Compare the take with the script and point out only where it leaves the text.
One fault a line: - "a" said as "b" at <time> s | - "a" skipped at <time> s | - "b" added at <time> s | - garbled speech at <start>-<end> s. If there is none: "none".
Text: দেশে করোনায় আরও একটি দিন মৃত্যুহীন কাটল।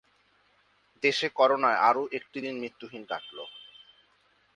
none